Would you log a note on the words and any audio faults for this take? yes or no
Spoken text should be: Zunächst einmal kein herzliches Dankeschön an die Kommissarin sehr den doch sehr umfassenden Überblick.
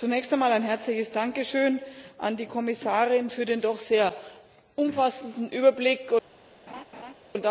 yes